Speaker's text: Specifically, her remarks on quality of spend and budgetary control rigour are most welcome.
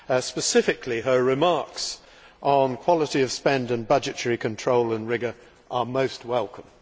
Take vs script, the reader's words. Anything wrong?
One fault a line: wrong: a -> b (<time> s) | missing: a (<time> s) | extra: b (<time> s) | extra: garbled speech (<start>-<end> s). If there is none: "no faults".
extra: and (4.9 s)